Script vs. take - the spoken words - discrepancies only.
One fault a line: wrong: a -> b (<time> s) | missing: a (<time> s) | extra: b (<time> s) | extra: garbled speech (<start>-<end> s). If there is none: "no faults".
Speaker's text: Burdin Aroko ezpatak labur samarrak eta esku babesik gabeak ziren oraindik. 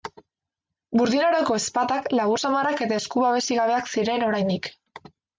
no faults